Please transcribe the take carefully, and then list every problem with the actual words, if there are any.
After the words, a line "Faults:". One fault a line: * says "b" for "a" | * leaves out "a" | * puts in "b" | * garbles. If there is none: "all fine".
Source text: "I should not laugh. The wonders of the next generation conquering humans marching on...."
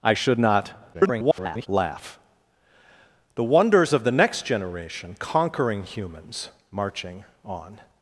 "I should not [garbled] laugh. The wonders of the next generation conquering humans marching on...."
Faults:
* garbles